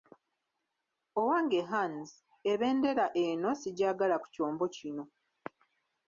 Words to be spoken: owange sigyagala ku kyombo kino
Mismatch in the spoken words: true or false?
true